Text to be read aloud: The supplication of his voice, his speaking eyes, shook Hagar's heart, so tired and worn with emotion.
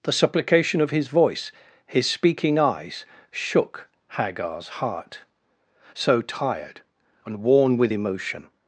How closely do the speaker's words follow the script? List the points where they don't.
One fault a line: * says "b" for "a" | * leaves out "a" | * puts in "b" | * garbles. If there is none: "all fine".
all fine